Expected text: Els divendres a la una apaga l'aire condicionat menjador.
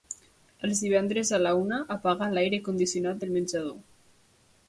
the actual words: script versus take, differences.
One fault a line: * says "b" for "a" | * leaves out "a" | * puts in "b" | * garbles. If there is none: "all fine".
* puts in "del"